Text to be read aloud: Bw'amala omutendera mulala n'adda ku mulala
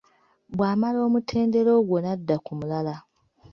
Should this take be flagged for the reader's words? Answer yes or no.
yes